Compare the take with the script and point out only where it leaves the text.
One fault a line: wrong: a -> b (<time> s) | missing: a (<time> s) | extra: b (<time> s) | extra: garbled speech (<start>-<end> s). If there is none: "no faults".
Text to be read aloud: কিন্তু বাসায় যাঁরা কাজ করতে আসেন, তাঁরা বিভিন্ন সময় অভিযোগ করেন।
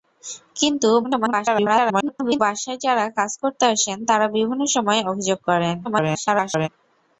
extra: garbled speech (1.0-2.4 s)
extra: garbled speech (5.8-6.7 s)